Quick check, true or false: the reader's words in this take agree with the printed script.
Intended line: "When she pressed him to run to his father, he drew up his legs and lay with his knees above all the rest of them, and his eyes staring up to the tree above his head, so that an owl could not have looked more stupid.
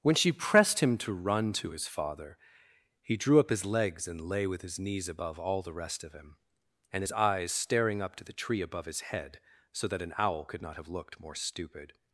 false